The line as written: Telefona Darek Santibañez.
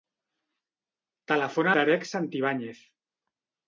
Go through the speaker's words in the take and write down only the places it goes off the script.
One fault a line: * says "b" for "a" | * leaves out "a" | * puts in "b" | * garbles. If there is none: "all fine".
all fine